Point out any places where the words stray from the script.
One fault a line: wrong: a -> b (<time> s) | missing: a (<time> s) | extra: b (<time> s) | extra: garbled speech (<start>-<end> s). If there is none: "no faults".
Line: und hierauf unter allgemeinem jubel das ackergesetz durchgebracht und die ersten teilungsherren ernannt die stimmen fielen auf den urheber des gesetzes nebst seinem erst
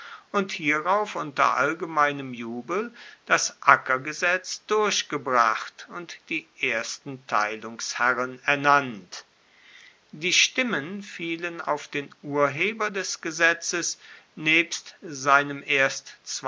no faults